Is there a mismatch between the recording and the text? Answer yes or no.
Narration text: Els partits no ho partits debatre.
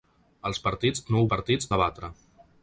no